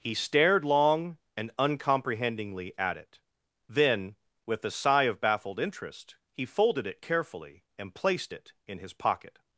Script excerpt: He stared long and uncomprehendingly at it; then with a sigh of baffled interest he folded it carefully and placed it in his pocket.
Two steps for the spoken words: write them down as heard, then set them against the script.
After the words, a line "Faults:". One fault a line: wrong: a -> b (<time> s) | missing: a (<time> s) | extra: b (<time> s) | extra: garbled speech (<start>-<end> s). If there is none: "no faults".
He stared long and uncomprehendingly at it; then with a sigh of baffled interest he folded it carefully and placed it in his pocket.
Faults:
no faults